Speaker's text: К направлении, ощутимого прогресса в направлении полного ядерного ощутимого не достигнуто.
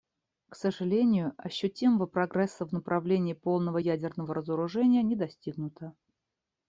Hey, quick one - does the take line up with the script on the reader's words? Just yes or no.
no